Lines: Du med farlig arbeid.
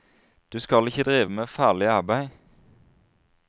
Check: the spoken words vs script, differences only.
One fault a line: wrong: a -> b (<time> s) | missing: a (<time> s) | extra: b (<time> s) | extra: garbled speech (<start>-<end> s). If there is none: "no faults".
extra: skal ikke drive (0.6 s)